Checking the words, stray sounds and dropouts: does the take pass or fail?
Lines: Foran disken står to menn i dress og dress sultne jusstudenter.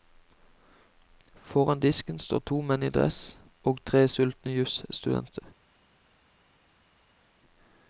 fail